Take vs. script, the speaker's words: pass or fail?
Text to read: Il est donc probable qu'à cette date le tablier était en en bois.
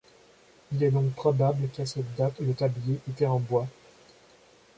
fail